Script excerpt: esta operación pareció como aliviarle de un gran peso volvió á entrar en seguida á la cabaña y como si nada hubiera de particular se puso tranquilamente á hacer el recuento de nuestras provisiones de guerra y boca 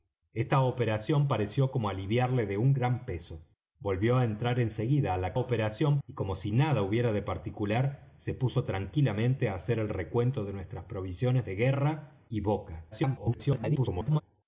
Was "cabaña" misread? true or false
true